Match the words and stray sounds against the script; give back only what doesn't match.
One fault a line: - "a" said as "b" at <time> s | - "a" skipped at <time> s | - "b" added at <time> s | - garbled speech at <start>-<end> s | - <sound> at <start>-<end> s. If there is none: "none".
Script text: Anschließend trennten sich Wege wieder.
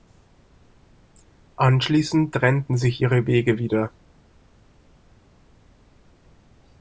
- "ihre" added at 3.0 s